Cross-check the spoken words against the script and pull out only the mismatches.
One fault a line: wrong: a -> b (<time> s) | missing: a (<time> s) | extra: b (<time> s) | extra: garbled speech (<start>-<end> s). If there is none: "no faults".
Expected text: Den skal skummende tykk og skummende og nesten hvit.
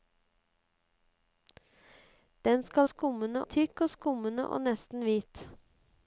no faults